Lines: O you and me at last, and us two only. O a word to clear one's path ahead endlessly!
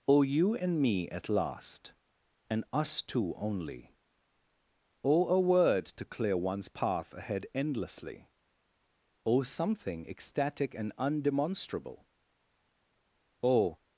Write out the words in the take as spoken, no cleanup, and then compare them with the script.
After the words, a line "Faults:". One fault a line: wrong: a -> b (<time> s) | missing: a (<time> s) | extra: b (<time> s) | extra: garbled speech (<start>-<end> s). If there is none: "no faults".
O you and me at last, and us two only. O a word to clear one's path ahead endlessly! O something ecstatic and undemonstrable! O
Faults:
extra: O something ecstatic and undemonstrable O (9.2 s)